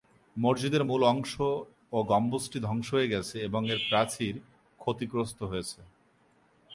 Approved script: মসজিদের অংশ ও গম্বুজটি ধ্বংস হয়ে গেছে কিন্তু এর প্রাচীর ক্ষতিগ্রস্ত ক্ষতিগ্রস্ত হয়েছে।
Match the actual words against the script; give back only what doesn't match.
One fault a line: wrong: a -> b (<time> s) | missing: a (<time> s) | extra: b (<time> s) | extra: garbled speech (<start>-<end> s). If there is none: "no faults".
extra: মূল (0.8 s)
wrong: কিন্তু -> এবং (3.5 s)
missing: ক্ষতিগ্রস্ত (5.4 s)